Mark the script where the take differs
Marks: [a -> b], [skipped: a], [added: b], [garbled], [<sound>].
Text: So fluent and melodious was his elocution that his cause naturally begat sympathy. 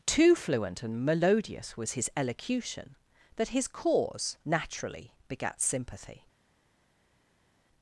[So -> Too] fluent and melodious was his elocution that his cause naturally begat sympathy.